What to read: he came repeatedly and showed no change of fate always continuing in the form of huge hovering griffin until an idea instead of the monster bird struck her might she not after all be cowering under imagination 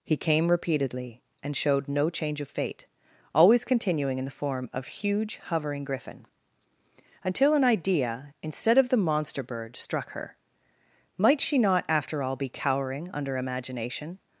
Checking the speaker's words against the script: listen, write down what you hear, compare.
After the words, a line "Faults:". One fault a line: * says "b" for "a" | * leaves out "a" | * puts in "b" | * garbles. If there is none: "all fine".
he came repeatedly and showed no change of fate always continuing in the form of huge hovering griffin until an idea instead of the monster bird struck her might she not after all be cowering under imagination
Faults:
all fine